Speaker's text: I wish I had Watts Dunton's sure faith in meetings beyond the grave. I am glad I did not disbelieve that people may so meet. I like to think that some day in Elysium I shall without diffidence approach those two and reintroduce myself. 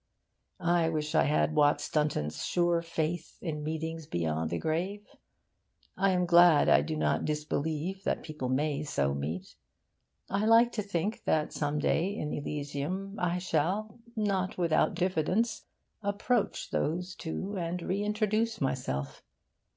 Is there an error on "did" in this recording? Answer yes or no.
yes